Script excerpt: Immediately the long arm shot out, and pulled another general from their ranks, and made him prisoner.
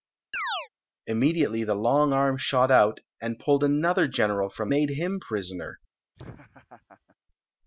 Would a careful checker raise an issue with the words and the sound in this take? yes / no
yes